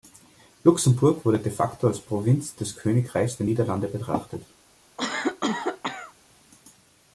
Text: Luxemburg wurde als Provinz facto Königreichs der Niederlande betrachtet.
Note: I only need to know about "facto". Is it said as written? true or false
false